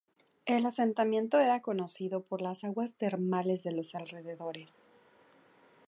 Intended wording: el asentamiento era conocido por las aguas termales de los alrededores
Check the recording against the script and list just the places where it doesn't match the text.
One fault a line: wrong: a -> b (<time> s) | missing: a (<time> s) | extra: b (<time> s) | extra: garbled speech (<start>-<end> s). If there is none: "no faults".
no faults